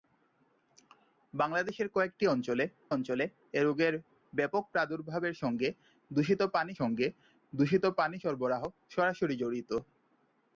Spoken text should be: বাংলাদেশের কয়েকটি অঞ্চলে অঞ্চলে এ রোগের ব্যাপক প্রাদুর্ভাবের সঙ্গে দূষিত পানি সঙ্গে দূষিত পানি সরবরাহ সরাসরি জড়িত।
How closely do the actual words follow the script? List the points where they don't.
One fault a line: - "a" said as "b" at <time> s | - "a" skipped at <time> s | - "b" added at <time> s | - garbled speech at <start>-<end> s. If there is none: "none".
none